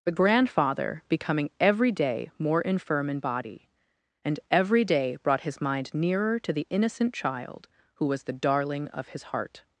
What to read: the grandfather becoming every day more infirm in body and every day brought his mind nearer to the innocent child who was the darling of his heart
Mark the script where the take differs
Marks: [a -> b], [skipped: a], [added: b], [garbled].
the grandfather becoming every day more infirm in body and every day brought his mind nearer to the innocent child who was the darling of his heart